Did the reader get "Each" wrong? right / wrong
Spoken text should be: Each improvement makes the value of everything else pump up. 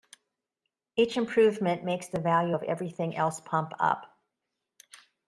right